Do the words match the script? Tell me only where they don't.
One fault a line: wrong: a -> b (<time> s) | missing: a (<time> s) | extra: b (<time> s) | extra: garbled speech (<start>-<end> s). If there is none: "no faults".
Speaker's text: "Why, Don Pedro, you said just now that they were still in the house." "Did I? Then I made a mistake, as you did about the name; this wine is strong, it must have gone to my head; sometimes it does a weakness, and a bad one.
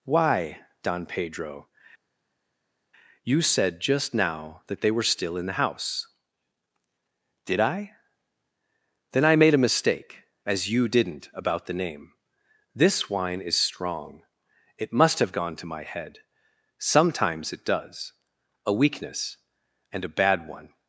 wrong: did -> didn't (10.9 s)